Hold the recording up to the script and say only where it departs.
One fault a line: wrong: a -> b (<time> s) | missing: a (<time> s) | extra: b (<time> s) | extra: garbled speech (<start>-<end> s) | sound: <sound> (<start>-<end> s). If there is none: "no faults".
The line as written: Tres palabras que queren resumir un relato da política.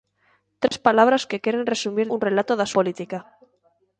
sound: dropout (0.7-0.7 s)